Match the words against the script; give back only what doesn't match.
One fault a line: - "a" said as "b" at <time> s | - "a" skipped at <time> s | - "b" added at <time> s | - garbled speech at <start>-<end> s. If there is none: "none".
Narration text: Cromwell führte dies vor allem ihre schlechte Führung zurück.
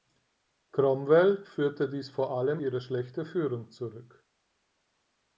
none